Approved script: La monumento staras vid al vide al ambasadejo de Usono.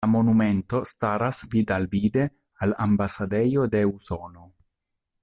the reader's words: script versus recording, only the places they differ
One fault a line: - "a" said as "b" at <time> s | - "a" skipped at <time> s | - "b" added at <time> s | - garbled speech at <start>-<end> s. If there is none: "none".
none